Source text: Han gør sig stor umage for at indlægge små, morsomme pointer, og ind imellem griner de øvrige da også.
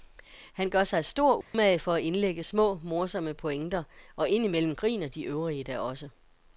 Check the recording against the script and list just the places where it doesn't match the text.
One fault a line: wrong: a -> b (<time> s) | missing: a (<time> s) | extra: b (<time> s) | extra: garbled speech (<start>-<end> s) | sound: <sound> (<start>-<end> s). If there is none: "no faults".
sound: dropout (1.4-1.5 s)